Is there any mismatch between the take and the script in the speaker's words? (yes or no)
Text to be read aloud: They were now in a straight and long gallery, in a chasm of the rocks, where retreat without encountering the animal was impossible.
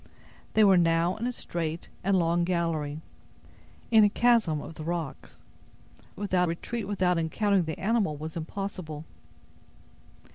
yes